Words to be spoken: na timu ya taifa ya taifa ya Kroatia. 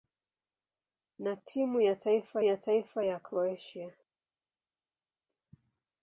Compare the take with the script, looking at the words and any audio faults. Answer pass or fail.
pass